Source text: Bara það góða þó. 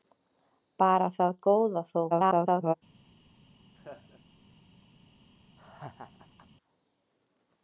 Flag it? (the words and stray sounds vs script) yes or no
yes